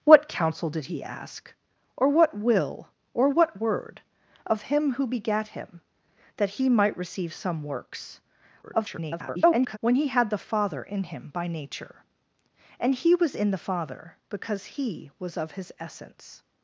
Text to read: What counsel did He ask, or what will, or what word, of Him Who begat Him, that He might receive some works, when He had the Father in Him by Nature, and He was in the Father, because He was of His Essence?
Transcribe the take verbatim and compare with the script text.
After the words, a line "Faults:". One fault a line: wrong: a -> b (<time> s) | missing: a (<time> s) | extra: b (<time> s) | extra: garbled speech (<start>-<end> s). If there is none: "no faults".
What counsel did He ask, or what will, or what word, of Him Who begat Him, that He might receive some works, [garbled] when He had the Father in Him by Nature, and He was in the Father, because He was of His Essence?
Faults:
extra: garbled speech (8.6-9.8 s)